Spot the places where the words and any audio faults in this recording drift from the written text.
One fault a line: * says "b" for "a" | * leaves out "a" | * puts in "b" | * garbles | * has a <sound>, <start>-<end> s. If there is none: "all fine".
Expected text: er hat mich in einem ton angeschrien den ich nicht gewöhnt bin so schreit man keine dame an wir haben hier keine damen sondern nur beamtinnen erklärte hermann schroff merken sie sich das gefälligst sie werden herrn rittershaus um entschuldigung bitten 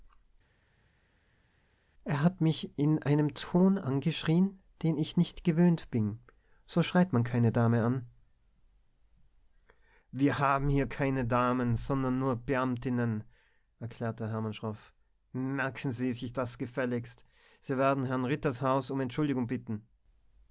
all fine